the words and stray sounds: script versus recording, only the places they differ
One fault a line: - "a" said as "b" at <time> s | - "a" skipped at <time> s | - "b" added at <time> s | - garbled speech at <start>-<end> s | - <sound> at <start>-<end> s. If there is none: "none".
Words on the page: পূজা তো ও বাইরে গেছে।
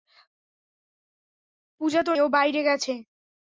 none